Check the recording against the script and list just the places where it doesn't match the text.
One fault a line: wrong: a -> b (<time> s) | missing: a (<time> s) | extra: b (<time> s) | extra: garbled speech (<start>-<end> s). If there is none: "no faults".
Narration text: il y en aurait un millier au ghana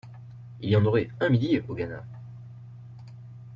no faults